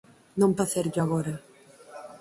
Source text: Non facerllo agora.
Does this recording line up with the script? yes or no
yes